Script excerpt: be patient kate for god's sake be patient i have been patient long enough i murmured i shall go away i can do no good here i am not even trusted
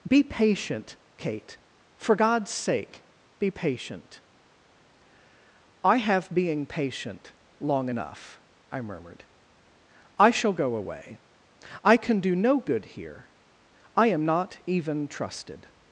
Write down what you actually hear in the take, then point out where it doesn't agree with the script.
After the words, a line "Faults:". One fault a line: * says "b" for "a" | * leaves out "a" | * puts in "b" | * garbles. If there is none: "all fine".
be patient kate for god's sake be patient i have being patient long enough i murmured i shall go away i can do no good here i am not even trusted
Faults:
* says "being" for "been"